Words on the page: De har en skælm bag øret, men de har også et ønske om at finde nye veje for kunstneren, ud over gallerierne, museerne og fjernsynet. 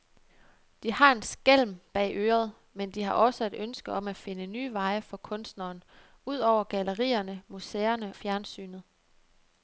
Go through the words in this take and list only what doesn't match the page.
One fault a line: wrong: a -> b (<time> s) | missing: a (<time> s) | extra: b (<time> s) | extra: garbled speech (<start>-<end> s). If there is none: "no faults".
missing: og (8.1 s)